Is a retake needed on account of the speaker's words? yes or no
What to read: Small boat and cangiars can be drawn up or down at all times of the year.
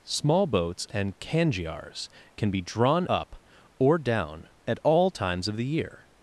yes